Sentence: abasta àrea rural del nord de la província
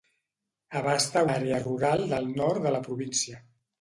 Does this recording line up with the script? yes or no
yes